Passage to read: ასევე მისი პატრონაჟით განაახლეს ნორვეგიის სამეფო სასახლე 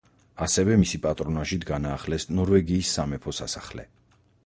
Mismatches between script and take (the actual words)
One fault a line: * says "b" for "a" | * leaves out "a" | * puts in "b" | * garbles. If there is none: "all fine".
all fine